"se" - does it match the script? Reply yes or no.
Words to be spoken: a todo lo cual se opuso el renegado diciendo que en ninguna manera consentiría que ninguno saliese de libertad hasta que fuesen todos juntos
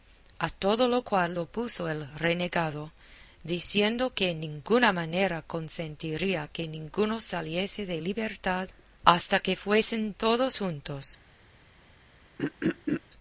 no